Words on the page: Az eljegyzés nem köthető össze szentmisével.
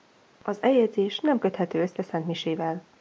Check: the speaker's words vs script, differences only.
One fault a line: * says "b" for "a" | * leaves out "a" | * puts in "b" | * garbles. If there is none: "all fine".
all fine